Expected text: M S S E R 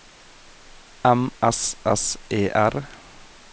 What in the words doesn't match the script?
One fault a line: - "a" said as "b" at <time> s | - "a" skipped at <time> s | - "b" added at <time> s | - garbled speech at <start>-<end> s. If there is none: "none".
none